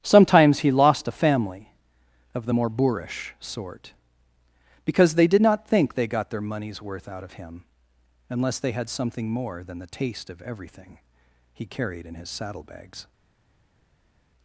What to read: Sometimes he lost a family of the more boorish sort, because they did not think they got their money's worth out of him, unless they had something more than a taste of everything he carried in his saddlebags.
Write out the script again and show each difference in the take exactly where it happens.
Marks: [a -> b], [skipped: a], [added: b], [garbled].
Sometimes he lost a family of the more boorish sort, because they did not think they got their money's worth out of him, unless they had something more than [a -> the] taste of everything he carried in his saddlebags.